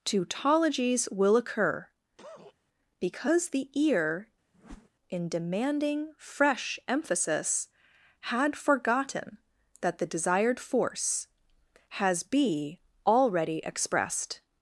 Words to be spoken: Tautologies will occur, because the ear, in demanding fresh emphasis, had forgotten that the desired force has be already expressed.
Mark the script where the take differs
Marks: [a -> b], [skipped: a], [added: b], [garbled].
Tautologies will occur, because the ear, in demanding fresh emphasis, had forgotten that the desired force has be already expressed.